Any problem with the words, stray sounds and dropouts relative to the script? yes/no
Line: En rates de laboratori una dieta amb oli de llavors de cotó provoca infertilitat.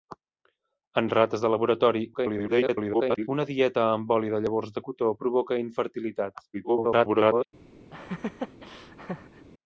yes